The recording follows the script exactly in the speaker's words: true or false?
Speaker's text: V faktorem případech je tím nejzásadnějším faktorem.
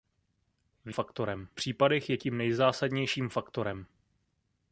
true